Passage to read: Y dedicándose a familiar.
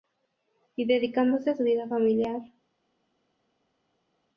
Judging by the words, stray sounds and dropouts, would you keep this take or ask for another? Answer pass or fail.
fail